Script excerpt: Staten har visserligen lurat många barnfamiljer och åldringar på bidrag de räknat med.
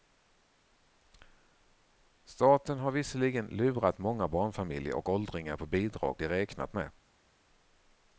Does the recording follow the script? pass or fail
pass